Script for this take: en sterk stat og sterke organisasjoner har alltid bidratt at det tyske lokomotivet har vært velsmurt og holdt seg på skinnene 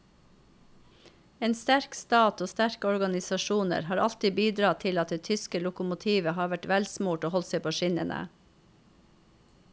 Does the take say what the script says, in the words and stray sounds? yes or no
no